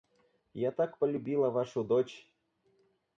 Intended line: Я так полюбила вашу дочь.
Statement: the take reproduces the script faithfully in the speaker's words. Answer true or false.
true